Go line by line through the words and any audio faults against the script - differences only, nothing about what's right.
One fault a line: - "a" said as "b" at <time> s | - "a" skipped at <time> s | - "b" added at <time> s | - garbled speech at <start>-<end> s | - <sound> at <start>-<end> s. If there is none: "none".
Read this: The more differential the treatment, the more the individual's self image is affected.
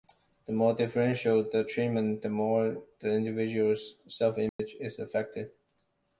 - dropout at 4.5-4.6 s